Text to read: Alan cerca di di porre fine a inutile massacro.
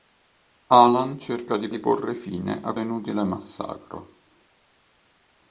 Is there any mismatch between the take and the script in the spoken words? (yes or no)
no